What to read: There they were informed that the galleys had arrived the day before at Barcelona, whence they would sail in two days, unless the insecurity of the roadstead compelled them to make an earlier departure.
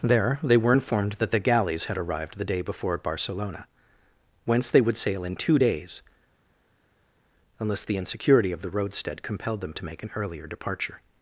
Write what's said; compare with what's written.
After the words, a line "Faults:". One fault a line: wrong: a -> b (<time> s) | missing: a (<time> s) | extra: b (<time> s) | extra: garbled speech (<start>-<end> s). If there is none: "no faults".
There they were informed that the galleys had arrived the day before at Barcelona, whence they would sail in two days, unless the insecurity of the roadstead compelled them to make an earlier departure.
Faults:
no faults